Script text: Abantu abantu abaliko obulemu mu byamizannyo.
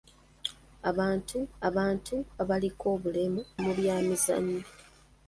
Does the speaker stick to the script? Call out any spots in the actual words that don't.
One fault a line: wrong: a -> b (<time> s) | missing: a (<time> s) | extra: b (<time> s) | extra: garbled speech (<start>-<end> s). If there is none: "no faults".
no faults